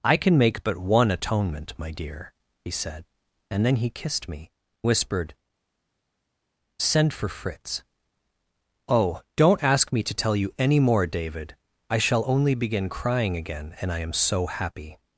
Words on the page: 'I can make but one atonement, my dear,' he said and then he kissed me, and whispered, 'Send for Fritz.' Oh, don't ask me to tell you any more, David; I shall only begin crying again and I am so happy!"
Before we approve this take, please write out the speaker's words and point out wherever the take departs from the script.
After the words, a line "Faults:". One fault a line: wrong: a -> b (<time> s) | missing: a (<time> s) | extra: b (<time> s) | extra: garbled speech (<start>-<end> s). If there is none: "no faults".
'I can make but one atonement, my dear,' he said and then he kissed me, whispered, 'Send for Fritz.' Oh, don't ask me to tell you any more, David; I shall only begin crying again and I am so happy!"
Faults:
missing: and (4.5 s)